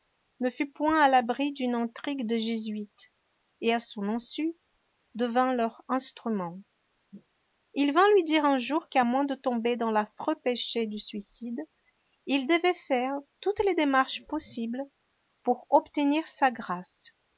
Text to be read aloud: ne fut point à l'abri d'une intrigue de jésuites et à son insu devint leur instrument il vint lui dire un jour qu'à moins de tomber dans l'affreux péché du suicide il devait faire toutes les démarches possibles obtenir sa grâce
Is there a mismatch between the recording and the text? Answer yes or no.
yes